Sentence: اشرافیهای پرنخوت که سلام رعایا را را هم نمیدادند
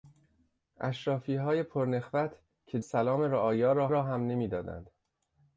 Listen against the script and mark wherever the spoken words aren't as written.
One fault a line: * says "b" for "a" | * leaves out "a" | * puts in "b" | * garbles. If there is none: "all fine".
all fine